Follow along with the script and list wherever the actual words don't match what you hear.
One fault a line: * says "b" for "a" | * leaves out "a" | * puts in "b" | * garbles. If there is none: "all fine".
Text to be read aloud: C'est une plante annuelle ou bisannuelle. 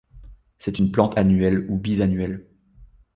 all fine